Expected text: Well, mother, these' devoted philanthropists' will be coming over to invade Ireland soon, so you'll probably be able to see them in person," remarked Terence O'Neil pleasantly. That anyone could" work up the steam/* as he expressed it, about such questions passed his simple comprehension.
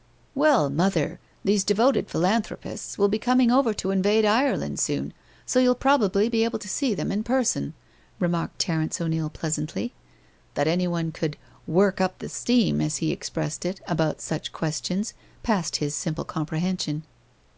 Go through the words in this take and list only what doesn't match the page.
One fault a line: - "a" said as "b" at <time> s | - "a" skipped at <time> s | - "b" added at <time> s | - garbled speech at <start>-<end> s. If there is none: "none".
none